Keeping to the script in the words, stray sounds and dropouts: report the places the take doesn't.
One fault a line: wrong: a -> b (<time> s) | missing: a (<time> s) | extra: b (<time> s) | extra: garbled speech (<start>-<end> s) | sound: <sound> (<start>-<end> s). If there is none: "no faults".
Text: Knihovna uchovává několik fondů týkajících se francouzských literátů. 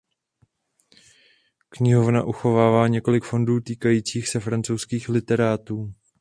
no faults